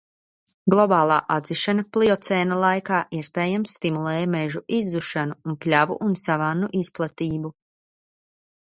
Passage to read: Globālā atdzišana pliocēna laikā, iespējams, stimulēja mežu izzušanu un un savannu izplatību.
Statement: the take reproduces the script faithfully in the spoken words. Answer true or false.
false